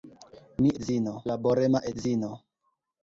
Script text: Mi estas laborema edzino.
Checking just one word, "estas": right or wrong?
wrong